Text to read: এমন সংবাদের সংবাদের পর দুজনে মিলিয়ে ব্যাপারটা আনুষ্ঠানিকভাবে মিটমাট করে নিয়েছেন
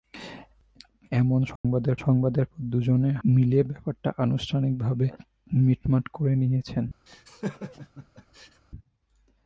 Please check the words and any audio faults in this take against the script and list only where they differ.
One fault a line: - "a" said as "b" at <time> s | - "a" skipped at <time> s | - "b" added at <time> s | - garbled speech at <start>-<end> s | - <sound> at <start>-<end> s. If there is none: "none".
- dropout at 1.6-1.6 s
- laugh at 7.1-8.6 s